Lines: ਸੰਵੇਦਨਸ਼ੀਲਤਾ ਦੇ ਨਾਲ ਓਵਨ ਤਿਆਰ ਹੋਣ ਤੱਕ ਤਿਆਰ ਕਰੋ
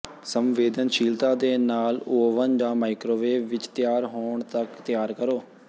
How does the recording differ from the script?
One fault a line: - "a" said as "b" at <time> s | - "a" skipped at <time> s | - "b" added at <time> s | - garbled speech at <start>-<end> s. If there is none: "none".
- "ਜਾਂ ਮਾਈਕ੍ਰੋਵੇਵ ਵਿੱਚ" added at 2.5 s